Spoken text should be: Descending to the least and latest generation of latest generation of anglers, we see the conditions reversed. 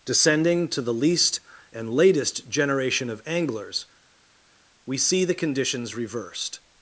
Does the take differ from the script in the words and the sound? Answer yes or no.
yes